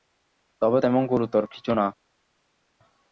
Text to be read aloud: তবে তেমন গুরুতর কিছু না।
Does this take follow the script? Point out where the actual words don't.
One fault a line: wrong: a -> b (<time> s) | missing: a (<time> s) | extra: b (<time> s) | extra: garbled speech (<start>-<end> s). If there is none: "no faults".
no faults